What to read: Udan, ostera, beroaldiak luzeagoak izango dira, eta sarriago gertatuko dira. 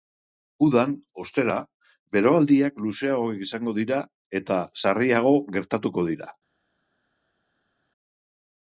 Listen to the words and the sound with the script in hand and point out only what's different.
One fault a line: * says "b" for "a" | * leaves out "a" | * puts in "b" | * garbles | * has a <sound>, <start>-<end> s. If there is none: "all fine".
all fine